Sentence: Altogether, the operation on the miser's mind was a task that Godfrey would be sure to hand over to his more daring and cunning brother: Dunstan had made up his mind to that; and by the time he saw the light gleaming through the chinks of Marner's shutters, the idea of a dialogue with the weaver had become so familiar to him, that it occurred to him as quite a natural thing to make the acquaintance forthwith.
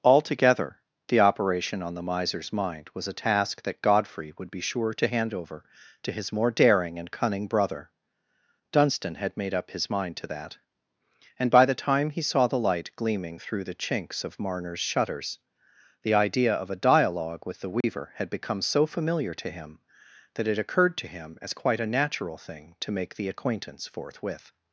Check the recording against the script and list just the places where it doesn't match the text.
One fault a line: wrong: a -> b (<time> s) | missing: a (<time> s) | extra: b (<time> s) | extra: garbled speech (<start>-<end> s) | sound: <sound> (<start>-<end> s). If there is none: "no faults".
sound: dropout (17.8-17.8 s)